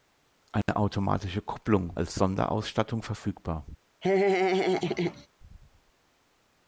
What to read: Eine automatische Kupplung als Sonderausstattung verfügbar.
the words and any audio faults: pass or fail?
fail